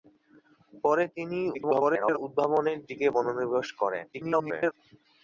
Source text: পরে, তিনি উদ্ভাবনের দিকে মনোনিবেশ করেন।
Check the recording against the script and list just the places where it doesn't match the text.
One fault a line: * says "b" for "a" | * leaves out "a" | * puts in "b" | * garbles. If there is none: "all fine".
* garbles
* garbles